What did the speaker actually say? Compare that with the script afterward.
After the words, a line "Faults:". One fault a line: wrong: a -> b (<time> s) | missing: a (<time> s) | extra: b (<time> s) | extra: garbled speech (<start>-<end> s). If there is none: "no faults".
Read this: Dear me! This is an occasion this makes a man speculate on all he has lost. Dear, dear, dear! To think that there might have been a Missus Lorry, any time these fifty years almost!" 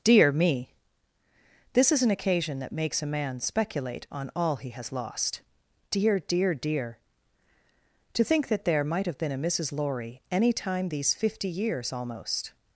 Dear me! This is an occasion that makes a man speculate on all he has lost. Dear, dear, dear! To think that there might have been a Missus Lorry, any time these fifty years almost!"
Faults:
wrong: this -> that (2.6 s)